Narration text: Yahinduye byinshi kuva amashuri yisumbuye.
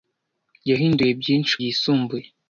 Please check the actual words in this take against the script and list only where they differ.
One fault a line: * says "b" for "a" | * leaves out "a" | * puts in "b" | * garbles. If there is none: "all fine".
* leaves out "kuva amashuri"